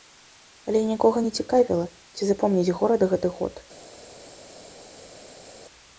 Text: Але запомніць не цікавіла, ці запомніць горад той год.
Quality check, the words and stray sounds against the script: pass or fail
fail